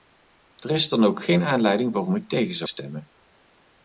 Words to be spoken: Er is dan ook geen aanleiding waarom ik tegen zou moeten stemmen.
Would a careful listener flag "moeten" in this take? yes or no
yes